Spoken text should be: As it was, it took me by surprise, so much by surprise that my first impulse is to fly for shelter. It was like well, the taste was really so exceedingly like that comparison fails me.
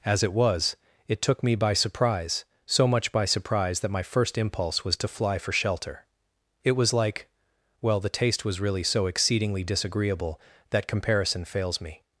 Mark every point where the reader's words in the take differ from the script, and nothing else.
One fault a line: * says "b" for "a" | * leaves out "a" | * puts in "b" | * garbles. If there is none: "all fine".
* says "was" for "is"
* says "disagreeable" for "like"